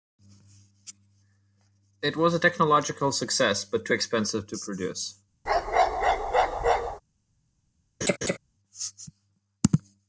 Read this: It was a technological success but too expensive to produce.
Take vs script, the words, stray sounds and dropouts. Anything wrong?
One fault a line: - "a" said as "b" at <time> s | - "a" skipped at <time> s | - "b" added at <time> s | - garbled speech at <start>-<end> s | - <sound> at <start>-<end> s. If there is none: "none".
- bark at 5.5-7.0 s
- laugh at 8.0-8.4 s